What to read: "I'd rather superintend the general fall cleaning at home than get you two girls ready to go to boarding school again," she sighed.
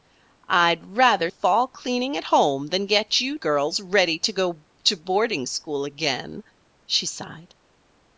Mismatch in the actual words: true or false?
true